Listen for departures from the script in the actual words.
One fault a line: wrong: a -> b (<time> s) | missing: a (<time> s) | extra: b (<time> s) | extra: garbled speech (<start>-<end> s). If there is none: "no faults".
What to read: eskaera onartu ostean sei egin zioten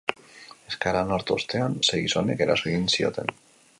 extra: gizonek eraso (2.0 s)